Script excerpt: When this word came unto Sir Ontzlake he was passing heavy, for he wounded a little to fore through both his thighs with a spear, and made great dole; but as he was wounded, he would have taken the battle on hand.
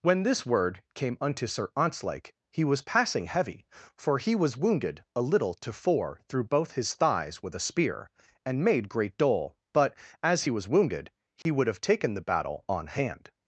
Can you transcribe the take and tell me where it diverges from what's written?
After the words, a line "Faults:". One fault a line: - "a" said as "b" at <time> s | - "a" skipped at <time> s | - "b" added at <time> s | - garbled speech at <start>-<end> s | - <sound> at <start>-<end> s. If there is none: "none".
When this word came unto Sir Ontzlake he was passing heavy, for he was wounded a little to fore through both his thighs with a spear, and made great dole; but as he was wounded, he would have taken the battle on hand.
Faults:
- "was" added at 4.3 s
- dropout at 11.4-11.5 s